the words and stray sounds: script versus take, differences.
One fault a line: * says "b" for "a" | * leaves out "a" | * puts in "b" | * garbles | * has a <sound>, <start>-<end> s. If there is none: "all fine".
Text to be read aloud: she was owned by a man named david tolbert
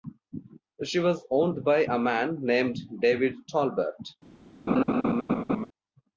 * has a laugh, 4.7-5.7 s